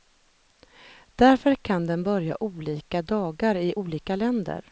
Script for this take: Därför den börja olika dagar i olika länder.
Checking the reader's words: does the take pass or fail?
fail